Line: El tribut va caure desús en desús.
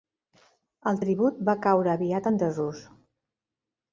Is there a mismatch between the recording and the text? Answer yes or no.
yes